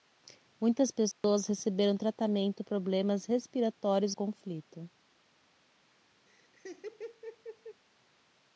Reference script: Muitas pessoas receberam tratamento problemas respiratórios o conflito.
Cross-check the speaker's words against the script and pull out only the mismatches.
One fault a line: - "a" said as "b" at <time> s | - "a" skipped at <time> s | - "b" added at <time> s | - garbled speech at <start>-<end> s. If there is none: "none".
none